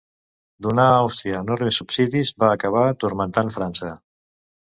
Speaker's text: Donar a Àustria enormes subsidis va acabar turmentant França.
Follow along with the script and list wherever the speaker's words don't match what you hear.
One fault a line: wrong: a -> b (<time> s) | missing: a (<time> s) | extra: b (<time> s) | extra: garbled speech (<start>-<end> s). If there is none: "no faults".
no faults